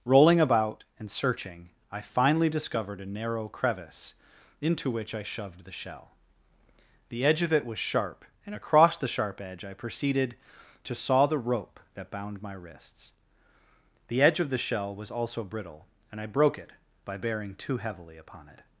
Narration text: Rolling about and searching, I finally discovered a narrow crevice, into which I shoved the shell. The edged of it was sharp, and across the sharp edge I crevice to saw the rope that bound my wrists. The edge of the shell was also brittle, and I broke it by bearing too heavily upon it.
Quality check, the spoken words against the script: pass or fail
fail